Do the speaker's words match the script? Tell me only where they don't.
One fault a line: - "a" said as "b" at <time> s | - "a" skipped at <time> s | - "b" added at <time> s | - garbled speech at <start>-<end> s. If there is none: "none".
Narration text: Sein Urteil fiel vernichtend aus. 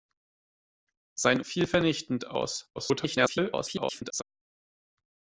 - "Urteil" skipped at 1.4 s
- garbled speech at 2.8-4.2 s